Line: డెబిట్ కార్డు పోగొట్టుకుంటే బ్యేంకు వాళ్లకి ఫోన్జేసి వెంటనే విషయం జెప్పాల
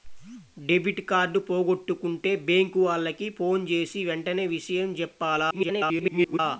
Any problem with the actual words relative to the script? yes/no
yes